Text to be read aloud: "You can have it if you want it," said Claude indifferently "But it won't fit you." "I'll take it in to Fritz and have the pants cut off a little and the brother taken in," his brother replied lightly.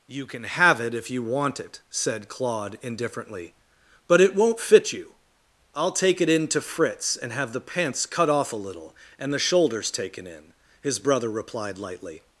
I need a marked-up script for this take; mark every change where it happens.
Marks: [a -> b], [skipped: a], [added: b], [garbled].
"You can have it if you want it," said Claude indifferently "But it won't fit you." "I'll take it in to Fritz and have the pants cut off a little and the [brother -> shoulders] taken in," his brother replied lightly.